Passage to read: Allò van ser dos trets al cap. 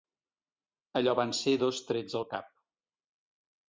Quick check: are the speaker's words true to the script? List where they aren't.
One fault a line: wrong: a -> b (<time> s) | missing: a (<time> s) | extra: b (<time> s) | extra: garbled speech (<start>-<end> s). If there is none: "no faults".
no faults